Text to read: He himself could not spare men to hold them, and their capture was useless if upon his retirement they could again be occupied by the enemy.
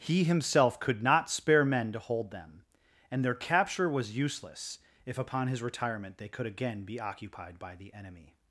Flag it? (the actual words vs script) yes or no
no